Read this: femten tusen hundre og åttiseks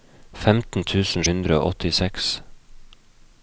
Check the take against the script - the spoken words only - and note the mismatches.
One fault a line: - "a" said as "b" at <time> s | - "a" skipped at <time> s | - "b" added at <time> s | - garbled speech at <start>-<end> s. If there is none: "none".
none